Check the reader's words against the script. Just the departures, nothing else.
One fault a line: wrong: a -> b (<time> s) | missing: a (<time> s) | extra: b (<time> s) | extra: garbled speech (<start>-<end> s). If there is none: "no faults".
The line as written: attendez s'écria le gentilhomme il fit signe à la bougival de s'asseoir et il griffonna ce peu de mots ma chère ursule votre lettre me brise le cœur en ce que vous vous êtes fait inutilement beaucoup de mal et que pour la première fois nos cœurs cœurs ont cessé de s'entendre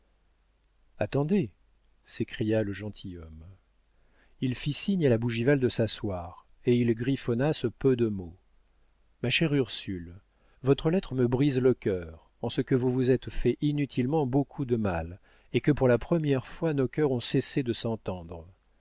missing: cœurs (17.1 s)